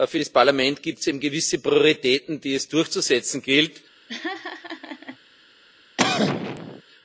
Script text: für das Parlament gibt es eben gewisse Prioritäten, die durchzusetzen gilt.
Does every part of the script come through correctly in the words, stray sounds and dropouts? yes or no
no